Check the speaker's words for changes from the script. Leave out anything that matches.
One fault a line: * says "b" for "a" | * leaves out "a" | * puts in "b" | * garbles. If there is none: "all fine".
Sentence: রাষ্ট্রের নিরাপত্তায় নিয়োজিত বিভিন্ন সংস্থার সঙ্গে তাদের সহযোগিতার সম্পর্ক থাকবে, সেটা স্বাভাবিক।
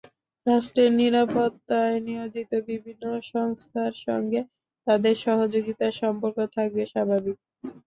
* leaves out "সেটা"